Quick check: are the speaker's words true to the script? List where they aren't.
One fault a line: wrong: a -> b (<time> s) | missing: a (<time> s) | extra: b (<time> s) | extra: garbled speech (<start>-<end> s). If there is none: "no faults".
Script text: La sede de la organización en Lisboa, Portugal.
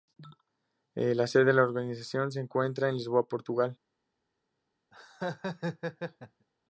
extra: se encuentra (2.3 s)